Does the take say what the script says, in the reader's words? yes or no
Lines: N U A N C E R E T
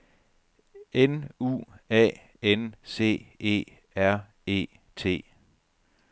yes